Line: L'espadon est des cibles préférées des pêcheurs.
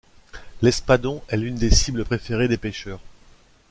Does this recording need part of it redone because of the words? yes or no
yes